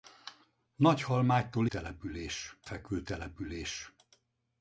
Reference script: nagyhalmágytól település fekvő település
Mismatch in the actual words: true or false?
false